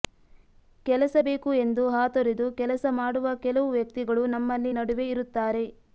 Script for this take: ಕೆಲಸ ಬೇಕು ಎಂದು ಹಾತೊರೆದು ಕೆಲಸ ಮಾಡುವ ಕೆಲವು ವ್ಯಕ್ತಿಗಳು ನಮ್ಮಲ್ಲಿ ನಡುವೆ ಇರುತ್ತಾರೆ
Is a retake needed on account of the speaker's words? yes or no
no